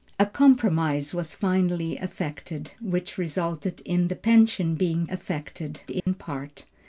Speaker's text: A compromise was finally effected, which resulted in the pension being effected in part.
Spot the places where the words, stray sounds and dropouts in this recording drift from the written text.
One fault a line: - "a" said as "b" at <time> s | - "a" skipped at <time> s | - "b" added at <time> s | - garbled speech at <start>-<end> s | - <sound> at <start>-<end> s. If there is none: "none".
- dropout at 6.0-6.1 s